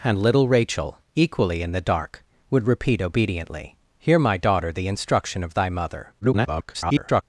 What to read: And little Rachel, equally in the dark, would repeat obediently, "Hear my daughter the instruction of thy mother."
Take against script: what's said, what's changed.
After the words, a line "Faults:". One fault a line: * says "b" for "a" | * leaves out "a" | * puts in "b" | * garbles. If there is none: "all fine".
And little Rachel, equally in the dark, would repeat obediently, "Hear my daughter the instruction of thy mother." [garbled]
Faults:
* garbles